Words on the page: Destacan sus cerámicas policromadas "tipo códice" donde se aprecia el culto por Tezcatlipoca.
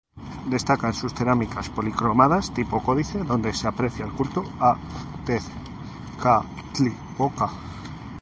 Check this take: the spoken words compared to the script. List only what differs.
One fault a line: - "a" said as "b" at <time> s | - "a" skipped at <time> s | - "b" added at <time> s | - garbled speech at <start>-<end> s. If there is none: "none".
- "por" said as "a" at 4.6 s